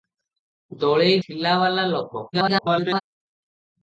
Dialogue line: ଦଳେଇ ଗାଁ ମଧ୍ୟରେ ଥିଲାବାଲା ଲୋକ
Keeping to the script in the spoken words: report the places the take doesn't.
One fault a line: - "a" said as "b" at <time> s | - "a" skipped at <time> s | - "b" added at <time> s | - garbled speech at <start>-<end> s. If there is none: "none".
- "ଗାଁ ମଧ୍ୟରେ" skipped at 1.2 s
- garbled speech at 2.3-3.0 s